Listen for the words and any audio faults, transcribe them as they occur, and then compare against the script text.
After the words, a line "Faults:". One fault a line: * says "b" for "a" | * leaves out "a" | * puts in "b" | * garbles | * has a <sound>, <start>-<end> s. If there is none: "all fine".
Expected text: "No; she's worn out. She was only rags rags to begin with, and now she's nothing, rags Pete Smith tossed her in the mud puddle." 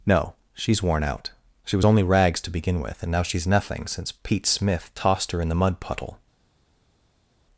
"No; she's worn out. She was only rags to begin with, and now she's nothing, since Pete Smith tossed her in the mud puddle."
Faults:
* leaves out "rags"
* says "since" for "rags"